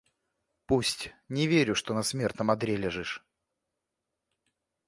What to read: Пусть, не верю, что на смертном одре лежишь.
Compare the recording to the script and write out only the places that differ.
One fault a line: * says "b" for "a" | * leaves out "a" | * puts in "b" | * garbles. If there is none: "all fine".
all fine